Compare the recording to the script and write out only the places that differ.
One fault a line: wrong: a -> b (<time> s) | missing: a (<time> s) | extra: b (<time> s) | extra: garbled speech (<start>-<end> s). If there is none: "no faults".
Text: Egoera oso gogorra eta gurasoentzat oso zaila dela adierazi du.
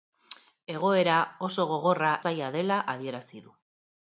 missing: eta gurasoentzat oso (2.1 s)